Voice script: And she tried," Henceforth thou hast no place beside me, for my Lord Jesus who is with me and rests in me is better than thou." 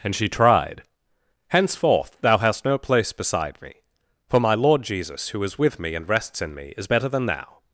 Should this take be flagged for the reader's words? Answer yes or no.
no